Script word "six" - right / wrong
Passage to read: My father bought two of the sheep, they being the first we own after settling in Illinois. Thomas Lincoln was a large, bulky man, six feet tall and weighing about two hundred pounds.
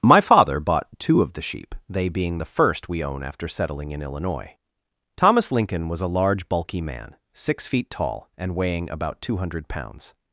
right